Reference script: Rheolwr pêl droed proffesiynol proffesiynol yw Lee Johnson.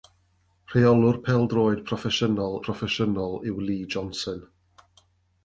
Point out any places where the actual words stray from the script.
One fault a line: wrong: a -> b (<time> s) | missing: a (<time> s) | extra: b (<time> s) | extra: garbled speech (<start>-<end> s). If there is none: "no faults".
no faults